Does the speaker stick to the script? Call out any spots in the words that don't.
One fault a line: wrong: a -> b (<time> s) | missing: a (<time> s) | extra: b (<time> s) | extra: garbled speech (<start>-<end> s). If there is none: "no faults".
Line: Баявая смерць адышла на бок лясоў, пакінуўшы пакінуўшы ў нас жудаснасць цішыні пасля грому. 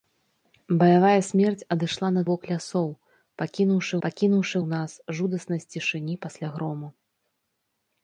no faults